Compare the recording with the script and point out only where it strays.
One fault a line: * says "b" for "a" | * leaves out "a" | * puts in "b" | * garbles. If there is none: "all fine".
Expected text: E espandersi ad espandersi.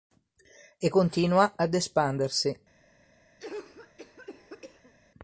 * says "continua" for "espandersi"